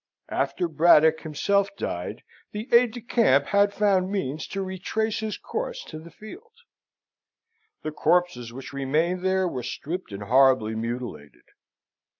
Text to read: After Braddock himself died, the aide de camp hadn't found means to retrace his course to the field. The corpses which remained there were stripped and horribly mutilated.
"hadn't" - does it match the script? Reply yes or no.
no